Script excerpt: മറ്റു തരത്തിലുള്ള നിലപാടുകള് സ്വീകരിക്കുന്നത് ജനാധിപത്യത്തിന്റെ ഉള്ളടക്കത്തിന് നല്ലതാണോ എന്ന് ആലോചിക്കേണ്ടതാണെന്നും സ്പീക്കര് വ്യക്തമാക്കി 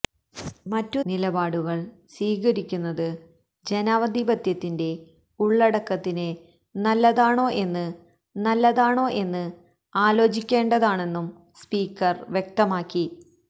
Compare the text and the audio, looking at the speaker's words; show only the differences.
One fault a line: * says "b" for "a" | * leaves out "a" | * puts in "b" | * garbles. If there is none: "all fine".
* leaves out "തരത്തിലുള്ള"
* puts in "നല്ലതാണോ എന്ന്"